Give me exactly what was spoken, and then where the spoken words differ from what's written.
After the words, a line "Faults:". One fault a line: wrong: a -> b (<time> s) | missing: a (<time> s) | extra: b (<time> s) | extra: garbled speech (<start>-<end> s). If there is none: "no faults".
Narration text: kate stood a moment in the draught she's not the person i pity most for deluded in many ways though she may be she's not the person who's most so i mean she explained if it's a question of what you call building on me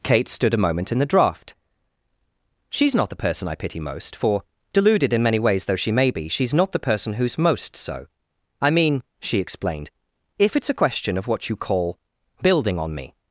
kate stood a moment in the draught she's not the person i pity most for deluded in many ways though she may be she's not the person who's most so i mean she explained if it's a question of what you call building on me
Faults:
no faults